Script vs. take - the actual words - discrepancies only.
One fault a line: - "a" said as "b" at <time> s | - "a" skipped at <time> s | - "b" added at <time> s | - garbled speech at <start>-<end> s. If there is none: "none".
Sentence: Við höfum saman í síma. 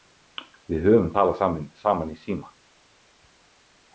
- "talað" added at 1.1 s